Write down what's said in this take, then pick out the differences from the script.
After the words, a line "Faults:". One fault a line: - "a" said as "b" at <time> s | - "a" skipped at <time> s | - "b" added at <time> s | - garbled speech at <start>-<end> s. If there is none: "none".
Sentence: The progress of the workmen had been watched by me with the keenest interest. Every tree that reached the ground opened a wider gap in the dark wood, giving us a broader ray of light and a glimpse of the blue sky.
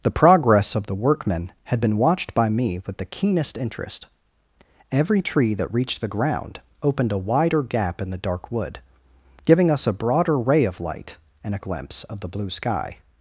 The progress of the workmen had been watched by me with the keenest interest. Every tree that reached the ground opened a wider gap in the dark wood, giving us a broader ray of light and a glimpse of the blue sky.
Faults:
none